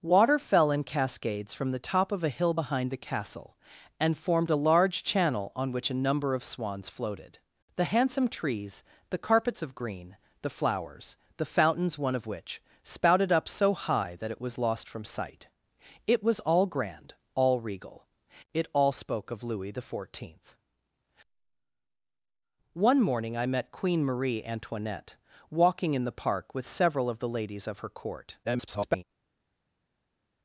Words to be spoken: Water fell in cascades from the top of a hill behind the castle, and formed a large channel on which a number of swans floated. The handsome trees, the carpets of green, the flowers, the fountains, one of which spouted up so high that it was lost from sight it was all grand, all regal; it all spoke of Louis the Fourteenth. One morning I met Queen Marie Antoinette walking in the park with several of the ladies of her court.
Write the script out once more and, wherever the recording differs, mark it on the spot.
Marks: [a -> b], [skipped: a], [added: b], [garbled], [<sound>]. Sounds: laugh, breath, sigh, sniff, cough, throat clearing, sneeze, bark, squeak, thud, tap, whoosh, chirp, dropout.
Water fell in cascades from the top of a hill behind the castle, and formed a large channel on which a number of swans floated. The handsome trees, the carpets of green, the flowers, the fountains, one of which spouted up so high that it was lost from sight it was all grand, all regal; it all spoke of Louis the Fourteenth. One morning I met Queen Marie Antoinette walking in the park with several of the ladies of her court. [garbled]